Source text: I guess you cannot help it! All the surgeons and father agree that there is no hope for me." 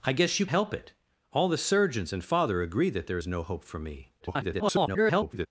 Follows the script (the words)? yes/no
no